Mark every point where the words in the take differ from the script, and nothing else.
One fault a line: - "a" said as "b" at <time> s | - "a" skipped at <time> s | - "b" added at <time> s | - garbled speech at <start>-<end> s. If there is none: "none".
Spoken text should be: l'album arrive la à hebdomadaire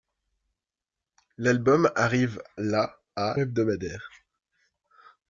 none